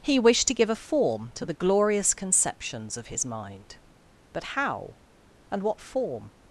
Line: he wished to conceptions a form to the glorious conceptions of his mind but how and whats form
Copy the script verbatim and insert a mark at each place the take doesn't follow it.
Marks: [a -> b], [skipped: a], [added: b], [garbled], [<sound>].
he wished to [conceptions -> give] a form to the glorious conceptions of his mind but how and [whats -> what] form